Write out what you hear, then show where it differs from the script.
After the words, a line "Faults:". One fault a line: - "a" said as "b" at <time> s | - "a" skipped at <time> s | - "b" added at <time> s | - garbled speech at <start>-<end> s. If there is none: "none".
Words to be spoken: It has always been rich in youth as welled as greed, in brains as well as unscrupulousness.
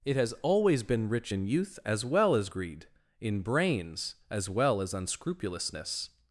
It has always been rich in youth as well as greed, in brains as well as unscrupulousness.
Faults:
- "welled" said as "well" at 2.0 s